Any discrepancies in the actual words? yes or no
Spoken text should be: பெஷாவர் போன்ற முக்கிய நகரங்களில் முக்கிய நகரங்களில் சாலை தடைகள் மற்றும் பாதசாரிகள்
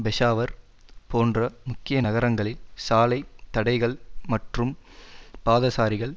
yes